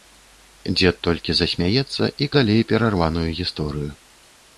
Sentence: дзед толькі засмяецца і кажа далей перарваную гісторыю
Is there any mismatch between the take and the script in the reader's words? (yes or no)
yes